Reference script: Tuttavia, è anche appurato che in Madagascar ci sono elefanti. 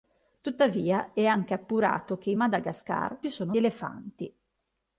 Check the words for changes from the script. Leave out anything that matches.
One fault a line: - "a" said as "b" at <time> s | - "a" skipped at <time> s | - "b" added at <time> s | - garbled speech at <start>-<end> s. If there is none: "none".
none